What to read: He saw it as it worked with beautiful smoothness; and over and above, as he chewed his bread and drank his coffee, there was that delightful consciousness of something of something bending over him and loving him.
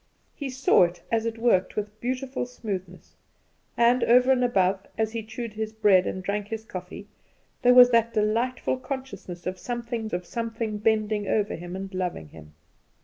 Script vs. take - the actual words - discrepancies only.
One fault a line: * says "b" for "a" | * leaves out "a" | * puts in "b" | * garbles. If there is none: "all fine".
all fine